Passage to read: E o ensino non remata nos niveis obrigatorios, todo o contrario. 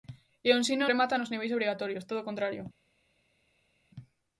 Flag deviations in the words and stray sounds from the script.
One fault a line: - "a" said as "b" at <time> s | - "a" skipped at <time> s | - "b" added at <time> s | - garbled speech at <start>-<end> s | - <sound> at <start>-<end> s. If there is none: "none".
- "non" skipped at 0.8 s